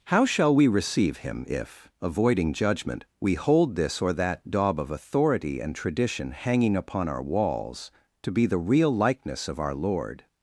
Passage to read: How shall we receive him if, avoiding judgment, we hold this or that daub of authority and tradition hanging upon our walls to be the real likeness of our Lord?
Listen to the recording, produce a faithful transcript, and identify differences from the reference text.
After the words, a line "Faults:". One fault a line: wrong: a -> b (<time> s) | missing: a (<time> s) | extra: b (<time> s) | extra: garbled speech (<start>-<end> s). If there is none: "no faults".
How shall we receive him if, avoiding judgment, we hold this or that daub of authority and tradition hanging upon our walls to be the real likeness of our Lord?
Faults:
no faults